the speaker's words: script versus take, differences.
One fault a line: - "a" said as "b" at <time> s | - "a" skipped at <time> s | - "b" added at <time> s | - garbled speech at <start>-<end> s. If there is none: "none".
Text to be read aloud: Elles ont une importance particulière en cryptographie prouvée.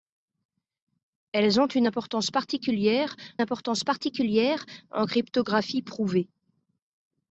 - "importance particulière" added at 3.4 s